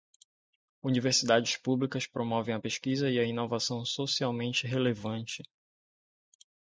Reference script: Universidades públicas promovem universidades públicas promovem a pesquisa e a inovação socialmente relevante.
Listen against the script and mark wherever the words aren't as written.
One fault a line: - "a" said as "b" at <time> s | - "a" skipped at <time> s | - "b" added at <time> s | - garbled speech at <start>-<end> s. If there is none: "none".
- "universidades públicas promovem" skipped at 2.5 s